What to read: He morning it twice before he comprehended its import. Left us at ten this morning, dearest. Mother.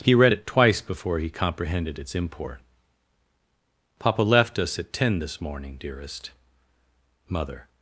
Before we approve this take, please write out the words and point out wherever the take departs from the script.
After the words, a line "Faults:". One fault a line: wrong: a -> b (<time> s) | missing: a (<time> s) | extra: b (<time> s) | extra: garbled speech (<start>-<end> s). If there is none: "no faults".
He read it twice before he comprehended its import. Papa left us at ten this morning, dearest. Mother.
Faults:
wrong: morning -> read (0.1 s)
extra: Papa (4.0 s)